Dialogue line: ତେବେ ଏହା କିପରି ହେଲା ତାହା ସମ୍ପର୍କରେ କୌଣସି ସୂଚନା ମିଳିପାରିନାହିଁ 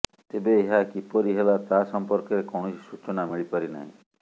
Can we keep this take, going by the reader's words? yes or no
yes